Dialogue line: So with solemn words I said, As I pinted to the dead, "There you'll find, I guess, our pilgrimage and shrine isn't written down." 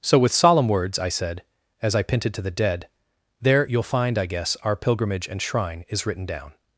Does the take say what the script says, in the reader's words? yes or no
no